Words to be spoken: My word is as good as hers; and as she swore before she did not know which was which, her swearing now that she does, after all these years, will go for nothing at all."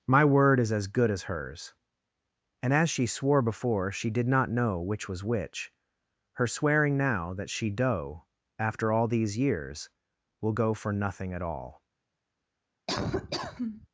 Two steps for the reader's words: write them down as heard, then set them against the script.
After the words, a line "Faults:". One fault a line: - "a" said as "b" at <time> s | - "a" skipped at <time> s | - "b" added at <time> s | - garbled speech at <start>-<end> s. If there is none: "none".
My word is as good as hers; and as she swore before she did not know which was which, her swearing now that she doe, after all these years, will go for nothing at all."
Faults:
- "does" said as "doe" at 7.7 s